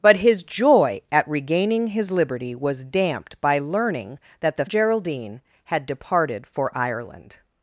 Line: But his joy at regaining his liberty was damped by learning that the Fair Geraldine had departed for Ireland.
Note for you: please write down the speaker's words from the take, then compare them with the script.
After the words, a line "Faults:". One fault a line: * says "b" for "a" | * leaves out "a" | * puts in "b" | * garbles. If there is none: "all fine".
But his joy at regaining his liberty was damped by learning that the Geraldine had departed for Ireland.
Faults:
* leaves out "Fair"